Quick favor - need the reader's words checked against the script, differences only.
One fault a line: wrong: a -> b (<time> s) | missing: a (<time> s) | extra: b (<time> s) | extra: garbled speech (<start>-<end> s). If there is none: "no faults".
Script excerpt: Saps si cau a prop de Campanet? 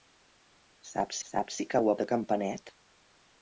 extra: saps (1.3 s)
missing: prop (2.0 s)